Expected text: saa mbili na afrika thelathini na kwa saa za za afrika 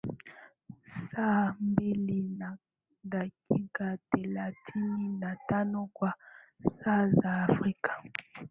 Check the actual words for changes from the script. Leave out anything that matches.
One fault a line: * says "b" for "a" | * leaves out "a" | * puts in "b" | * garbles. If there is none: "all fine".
* says "dakika" for "afrika"
* puts in "tano"
* leaves out "za"